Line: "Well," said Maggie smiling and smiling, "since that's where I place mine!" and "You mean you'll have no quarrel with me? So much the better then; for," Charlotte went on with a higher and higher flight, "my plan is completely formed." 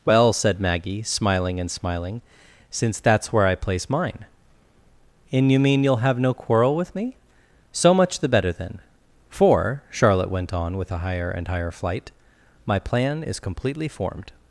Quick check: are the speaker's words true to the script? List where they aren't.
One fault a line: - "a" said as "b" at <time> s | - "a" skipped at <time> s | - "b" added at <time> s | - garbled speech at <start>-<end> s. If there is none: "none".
none